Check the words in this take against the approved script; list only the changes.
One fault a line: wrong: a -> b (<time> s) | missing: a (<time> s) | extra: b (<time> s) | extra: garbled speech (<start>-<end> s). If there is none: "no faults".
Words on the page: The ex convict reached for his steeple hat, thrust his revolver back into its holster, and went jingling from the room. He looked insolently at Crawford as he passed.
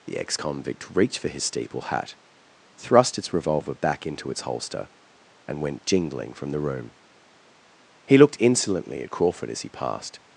wrong: his -> its (3.2 s)